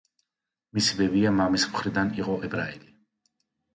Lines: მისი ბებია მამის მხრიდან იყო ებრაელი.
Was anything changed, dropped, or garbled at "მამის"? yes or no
no